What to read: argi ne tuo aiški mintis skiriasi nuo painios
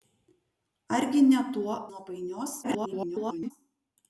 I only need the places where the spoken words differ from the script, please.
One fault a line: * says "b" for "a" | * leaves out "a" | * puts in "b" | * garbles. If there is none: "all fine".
* leaves out "aiški mintis skiriasi"
* garbles